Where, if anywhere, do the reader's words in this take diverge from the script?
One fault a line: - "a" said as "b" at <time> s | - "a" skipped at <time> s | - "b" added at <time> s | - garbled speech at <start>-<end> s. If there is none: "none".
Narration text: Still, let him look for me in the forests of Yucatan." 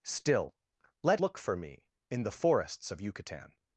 - "him" skipped at 1.2 s